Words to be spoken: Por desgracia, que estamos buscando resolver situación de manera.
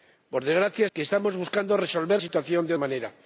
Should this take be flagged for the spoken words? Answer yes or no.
no